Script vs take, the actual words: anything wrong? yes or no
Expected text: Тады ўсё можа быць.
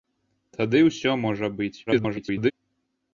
yes